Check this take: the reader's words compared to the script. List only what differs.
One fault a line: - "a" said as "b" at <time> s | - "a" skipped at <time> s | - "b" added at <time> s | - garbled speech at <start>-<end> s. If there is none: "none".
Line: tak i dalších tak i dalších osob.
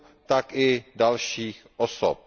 - "tak i dalších" skipped at 1.7 s